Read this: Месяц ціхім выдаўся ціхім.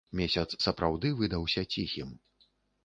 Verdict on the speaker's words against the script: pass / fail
fail